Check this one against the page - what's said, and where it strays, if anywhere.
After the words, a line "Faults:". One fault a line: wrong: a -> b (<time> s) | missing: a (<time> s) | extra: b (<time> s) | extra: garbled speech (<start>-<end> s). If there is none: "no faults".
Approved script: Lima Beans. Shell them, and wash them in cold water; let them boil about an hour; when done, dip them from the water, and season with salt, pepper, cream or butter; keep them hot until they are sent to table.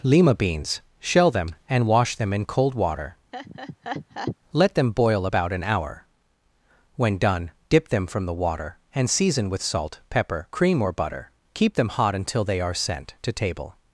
Lima Beans. Shell them, and wash them in cold water; let them boil about an hour; when done, dip them from the water, and season with salt, pepper, cream or butter; keep them hot until they are sent to table.
Faults:
no faults